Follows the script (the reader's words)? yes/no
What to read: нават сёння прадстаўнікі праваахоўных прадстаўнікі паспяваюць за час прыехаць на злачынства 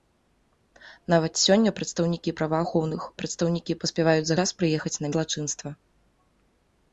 yes